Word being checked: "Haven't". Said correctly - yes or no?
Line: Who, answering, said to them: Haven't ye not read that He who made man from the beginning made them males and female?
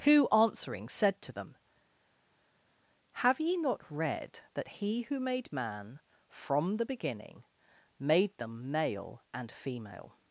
no